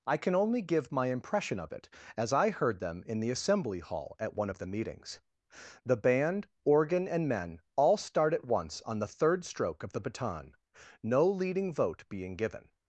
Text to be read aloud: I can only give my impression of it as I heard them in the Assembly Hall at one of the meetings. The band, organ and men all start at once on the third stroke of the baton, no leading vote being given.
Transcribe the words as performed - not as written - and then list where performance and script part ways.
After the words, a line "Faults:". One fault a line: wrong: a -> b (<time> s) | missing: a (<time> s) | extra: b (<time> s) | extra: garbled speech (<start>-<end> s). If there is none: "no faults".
I can only give my impression of it as I heard them in the Assembly Hall at one of the meetings. The band, organ and men all start at once on the third stroke of the baton, no leading vote being given.
Faults:
no faults